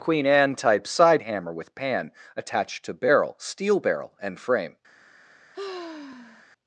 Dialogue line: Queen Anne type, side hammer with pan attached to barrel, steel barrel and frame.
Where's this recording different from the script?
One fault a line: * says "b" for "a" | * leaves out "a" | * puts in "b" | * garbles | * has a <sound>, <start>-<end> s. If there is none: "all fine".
* has a sigh, 5.5-6.4 s